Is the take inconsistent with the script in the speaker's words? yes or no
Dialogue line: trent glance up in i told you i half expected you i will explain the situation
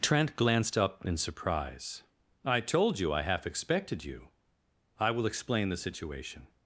yes